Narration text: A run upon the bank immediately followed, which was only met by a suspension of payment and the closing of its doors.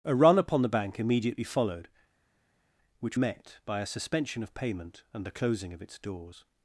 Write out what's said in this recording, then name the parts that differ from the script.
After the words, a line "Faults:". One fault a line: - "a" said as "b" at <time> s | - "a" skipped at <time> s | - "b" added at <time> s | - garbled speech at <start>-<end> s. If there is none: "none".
A run upon the bank immediately followed, which met by a suspension of payment and the closing of its doors.
Faults:
- "was only" skipped at 3.2 s